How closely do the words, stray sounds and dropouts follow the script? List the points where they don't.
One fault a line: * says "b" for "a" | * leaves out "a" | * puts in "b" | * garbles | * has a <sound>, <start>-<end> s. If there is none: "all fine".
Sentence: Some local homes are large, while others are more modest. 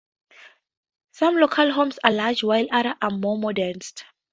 all fine